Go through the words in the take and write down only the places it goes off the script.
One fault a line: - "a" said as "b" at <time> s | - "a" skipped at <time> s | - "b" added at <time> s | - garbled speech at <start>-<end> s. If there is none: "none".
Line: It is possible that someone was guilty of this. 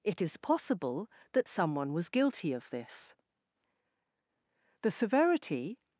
- "The severity" added at 4.8 s